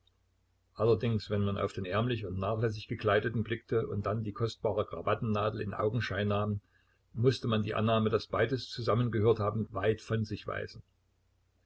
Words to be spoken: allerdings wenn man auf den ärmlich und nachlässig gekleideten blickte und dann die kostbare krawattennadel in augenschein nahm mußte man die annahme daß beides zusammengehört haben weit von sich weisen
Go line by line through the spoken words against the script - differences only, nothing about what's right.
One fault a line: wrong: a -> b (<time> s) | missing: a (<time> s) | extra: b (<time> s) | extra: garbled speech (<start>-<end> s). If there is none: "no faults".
no faults